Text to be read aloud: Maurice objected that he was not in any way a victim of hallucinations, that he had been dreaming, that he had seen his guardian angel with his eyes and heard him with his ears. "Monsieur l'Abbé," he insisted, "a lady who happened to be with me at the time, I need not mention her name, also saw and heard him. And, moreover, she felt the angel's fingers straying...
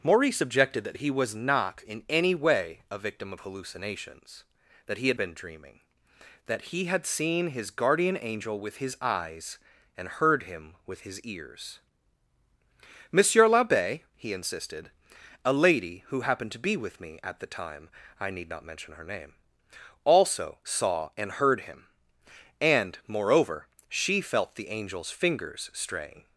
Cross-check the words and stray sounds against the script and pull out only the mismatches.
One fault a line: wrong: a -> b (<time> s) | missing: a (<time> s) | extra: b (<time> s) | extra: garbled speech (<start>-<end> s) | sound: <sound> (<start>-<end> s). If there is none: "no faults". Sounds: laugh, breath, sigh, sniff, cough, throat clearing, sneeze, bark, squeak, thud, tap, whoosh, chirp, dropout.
no faults